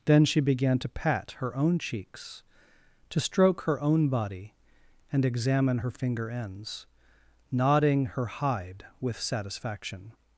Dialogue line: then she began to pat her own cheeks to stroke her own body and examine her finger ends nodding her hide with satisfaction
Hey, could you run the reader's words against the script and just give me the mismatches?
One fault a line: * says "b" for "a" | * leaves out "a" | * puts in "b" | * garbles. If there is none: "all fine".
all fine